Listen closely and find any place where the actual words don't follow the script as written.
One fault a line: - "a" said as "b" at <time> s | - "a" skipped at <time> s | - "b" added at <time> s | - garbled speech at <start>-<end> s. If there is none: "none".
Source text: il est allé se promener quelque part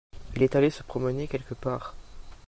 none